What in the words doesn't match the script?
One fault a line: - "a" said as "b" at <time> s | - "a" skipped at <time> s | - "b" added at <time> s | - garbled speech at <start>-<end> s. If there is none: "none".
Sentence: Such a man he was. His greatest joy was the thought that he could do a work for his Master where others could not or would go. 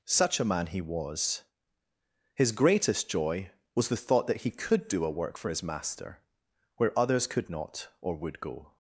none